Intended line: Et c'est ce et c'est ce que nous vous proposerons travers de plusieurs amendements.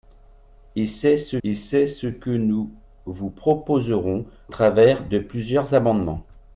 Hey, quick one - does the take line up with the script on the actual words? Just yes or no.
yes